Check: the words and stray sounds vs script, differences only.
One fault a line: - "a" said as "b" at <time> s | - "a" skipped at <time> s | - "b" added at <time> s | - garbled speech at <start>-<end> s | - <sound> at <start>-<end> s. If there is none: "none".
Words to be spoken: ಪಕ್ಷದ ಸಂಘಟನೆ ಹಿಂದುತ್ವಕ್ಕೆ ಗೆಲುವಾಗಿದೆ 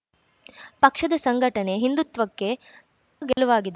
- dropout at 3.3-3.4 s